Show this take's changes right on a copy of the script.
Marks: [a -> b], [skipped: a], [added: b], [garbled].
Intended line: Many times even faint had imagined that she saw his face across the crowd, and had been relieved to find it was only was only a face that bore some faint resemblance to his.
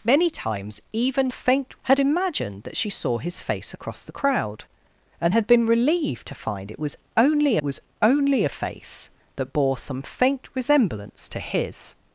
Many times even faint had imagined that she saw his face across the crowd, and had been relieved to find it was only was only a face that bore some faint resemblance to his.